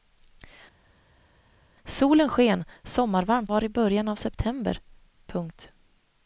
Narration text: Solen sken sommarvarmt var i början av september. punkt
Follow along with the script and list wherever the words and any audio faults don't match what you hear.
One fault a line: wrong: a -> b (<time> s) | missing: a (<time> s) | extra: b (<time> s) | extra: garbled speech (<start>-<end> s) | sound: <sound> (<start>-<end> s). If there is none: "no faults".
no faults